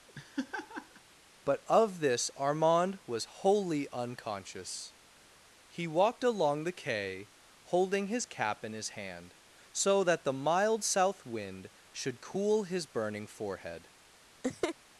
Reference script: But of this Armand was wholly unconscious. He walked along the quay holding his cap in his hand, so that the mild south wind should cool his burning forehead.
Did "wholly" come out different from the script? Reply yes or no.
no